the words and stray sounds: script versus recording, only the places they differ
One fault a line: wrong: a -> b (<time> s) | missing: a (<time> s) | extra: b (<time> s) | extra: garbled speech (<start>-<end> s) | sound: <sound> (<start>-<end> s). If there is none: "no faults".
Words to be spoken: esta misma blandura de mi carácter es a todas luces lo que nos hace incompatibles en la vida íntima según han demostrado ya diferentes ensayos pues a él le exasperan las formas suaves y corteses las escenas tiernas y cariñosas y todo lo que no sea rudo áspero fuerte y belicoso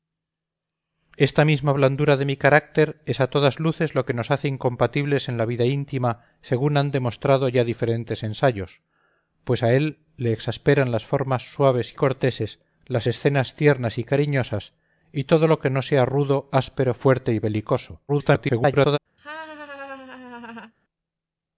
extra: garbled speech (18.1-19.0 s)
sound: laugh (19.2-20.7 s)